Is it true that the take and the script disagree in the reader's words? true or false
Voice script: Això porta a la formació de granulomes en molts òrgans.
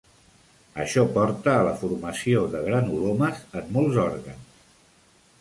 false